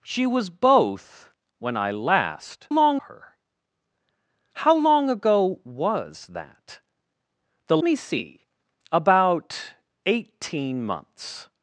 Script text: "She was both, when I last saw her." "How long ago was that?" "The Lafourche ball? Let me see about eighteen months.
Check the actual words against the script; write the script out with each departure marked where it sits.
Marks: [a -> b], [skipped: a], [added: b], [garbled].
"She was both, when I last [saw -> long] her." "How long ago was that?" "The [skipped: Lafourche ball? Let] me see about eighteen months.